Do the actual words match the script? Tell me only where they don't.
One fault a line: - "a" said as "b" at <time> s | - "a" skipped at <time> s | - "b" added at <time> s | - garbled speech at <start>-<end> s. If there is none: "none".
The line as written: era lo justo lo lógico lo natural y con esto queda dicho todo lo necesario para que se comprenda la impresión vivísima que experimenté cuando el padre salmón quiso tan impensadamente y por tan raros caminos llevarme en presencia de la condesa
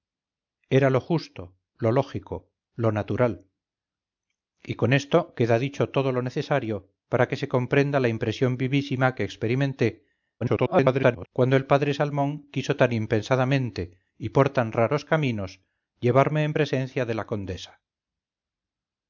- garbled speech at 10.4-11.3 s